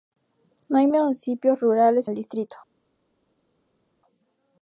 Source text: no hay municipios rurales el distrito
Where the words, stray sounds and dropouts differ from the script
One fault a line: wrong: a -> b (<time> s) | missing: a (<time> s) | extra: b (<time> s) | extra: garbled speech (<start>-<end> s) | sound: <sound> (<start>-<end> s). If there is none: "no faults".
no faults